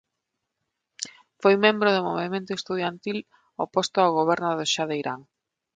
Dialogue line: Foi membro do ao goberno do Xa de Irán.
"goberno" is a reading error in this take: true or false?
false